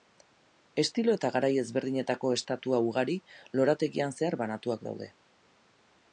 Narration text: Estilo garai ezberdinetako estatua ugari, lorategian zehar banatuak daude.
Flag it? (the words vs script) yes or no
yes